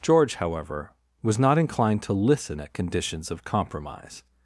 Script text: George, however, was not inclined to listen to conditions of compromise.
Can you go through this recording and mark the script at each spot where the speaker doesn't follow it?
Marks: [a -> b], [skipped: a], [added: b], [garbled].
George, however, was not inclined to listen [to -> at] conditions of compromise.